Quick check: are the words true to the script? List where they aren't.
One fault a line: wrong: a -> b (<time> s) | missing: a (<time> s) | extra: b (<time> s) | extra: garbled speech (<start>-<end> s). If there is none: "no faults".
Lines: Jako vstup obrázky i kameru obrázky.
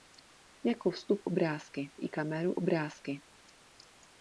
no faults